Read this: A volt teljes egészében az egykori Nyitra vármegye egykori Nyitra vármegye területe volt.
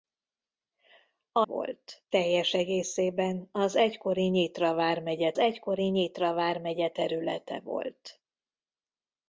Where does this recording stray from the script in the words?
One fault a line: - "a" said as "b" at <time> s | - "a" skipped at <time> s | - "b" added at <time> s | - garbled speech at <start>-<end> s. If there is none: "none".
none